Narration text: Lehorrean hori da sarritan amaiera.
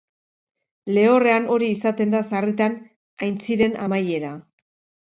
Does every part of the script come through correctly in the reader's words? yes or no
no